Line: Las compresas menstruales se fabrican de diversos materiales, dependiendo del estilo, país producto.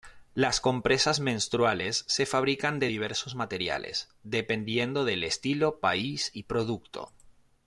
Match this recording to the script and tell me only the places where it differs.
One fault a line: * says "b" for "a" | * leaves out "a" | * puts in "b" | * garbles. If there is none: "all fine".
* puts in "y"